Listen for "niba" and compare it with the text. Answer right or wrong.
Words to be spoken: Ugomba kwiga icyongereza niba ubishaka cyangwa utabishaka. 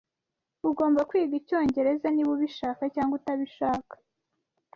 right